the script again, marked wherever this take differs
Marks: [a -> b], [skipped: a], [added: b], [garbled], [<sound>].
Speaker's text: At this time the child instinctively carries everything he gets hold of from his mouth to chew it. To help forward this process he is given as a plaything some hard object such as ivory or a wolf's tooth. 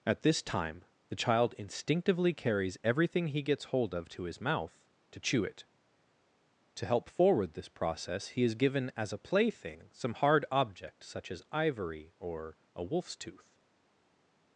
At this time the child instinctively carries everything he gets hold of [from -> to] his mouth to chew it. To help forward this process he is given as a plaything some hard object such as ivory or a wolf's tooth.